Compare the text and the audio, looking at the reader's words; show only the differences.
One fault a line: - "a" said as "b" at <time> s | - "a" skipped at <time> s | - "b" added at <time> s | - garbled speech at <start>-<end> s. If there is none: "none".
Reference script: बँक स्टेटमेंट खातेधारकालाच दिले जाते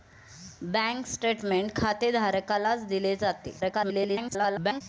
- garbled speech at 3.6-4.8 s